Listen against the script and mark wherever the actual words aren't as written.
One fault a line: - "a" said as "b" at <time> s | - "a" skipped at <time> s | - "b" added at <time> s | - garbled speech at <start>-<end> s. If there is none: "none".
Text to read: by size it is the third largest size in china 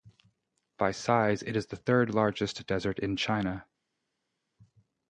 - "size" said as "desert" at 2.6 s